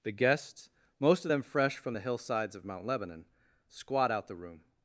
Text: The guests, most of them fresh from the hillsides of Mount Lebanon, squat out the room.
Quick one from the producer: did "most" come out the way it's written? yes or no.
yes